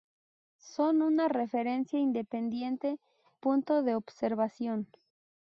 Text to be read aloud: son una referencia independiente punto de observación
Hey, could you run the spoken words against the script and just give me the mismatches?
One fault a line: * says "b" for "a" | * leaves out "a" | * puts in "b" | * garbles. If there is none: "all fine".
all fine